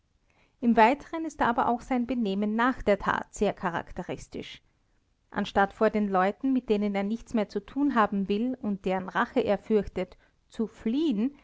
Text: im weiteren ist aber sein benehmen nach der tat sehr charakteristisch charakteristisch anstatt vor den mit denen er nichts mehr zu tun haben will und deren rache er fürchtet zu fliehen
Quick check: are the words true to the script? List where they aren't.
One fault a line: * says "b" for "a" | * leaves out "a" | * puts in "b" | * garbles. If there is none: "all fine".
* puts in "auch"
* leaves out "charakteristisch"
* puts in "leuten"